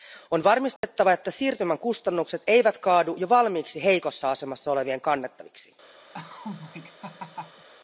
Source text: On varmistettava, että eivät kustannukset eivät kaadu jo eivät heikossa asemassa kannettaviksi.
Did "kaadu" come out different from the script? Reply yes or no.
no